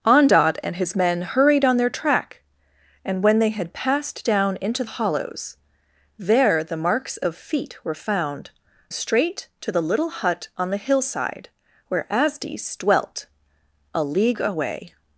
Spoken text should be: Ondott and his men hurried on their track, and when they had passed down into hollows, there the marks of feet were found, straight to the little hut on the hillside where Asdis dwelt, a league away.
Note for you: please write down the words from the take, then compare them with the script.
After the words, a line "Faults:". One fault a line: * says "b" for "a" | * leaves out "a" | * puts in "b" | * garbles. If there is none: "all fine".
Ondott and his men hurried on their track, and when they had passed down into hollows, there the marks of feet were found, straight to the little hut on the hillside where Asdis dwelt, a league away.
Faults:
all fine